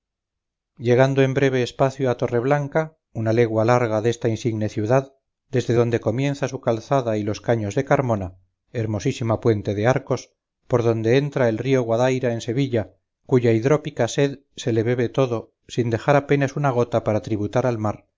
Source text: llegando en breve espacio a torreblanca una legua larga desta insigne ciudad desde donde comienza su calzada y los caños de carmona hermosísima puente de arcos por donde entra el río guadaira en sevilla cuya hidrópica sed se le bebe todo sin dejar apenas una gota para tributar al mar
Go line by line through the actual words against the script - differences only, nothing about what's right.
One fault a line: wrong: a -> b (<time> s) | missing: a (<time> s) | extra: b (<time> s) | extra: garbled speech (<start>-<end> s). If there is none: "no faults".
no faults